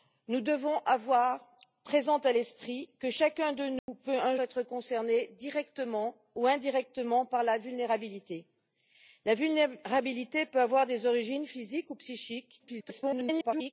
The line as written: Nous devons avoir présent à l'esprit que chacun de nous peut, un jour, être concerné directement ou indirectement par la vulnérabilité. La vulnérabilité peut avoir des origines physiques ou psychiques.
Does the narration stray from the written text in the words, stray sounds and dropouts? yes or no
yes